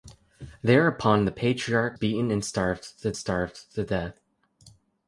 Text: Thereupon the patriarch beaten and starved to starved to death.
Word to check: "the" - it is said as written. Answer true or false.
true